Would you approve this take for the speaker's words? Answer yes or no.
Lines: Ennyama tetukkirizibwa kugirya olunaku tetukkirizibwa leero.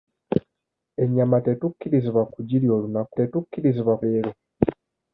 yes